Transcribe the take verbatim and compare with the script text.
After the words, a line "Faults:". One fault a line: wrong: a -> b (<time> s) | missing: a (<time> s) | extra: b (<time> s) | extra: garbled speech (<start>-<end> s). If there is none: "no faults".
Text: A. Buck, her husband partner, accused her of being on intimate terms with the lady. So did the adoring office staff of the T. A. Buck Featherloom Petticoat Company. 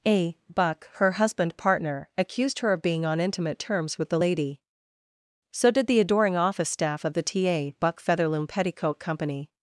A. Buck, her husband partner, accused her of being on intimate terms with the lady. So did the adoring office staff of the T. A. Buck Featherloom Petticoat Company.
Faults:
no faults